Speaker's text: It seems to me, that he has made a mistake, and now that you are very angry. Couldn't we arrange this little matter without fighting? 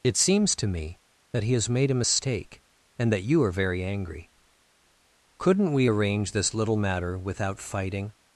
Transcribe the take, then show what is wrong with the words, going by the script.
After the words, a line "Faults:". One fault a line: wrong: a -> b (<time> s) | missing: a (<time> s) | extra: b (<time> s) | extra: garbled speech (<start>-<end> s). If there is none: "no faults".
It seems to me, that he has made a mistake, and that you are very angry. Couldn't we arrange this little matter without fighting?
Faults:
missing: now (3.1 s)